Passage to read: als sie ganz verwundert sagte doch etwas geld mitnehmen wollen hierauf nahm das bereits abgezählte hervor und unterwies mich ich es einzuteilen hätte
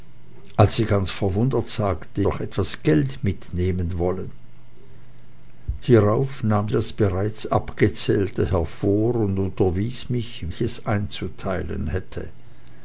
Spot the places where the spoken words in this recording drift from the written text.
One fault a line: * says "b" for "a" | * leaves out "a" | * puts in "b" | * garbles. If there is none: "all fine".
all fine